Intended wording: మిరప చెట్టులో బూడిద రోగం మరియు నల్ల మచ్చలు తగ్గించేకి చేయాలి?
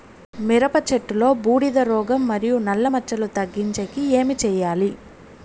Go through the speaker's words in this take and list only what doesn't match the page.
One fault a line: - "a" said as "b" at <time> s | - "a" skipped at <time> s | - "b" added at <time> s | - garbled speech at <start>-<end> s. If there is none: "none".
- "ఏమి" added at 4.1 s